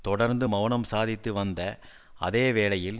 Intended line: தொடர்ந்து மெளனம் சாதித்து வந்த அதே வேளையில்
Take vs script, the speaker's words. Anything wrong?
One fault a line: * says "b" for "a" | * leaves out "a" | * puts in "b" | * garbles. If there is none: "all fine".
all fine